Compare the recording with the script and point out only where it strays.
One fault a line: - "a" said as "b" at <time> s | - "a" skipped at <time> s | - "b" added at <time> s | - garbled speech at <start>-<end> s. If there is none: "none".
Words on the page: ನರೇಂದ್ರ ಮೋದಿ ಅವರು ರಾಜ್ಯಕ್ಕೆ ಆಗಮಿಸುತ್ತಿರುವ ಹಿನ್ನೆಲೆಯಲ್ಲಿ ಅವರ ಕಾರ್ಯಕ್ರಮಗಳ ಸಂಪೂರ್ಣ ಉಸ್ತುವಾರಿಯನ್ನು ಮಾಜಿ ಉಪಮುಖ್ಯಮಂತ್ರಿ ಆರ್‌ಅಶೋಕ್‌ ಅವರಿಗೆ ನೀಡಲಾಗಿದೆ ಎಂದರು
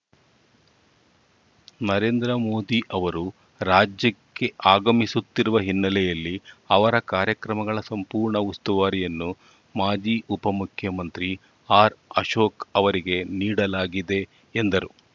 none